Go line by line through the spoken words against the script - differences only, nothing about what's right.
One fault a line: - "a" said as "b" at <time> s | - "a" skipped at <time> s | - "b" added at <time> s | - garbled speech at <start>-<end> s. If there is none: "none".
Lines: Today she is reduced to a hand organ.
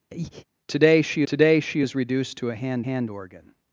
- "today she" added at 1.2 s
- "hand" added at 2.8 s